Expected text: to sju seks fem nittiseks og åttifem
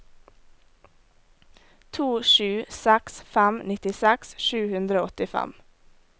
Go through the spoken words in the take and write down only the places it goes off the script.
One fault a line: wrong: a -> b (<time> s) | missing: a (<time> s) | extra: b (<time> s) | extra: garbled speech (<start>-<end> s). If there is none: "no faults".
extra: sju hundre (4.5 s)